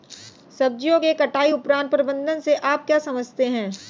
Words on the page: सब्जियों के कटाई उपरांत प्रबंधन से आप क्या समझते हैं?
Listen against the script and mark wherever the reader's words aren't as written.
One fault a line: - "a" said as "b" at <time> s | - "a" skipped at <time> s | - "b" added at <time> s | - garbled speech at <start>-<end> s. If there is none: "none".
none